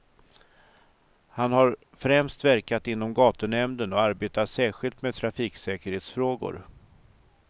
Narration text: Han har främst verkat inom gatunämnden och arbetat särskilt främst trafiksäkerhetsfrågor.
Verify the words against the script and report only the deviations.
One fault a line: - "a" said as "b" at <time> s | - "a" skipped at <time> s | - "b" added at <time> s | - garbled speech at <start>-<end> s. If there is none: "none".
- "främst" said as "med" at 5.0 s